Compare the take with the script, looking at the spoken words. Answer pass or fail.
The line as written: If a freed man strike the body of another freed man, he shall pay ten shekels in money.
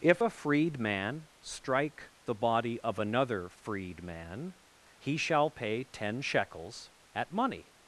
fail